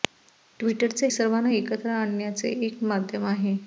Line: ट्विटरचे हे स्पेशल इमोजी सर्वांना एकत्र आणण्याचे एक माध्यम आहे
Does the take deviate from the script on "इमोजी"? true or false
true